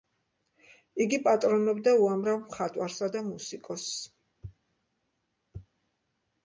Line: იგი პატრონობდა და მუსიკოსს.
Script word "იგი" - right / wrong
right